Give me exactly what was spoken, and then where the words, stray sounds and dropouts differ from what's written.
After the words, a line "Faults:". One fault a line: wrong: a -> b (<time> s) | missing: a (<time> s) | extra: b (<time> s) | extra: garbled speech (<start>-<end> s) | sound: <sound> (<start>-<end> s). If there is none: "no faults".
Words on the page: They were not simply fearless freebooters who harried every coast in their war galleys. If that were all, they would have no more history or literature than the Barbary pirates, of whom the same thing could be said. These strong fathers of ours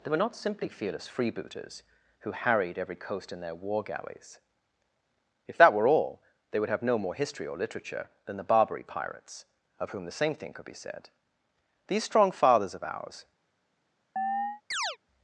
They were not simply fearless freebooters who harried every coast in their war galleys. If that were all, they would have no more history or literature than the Barbary pirates, of whom the same thing could be said. These strong fathers of ours
Faults:
sound: chirp (14.2-15.0 s)